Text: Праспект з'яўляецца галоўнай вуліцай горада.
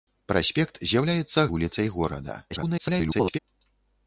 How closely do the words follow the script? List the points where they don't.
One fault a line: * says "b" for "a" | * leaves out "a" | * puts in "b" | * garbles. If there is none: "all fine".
* leaves out "галоўнай"
* garbles